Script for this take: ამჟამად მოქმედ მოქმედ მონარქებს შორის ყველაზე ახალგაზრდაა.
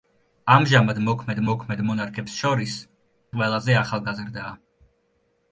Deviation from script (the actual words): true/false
false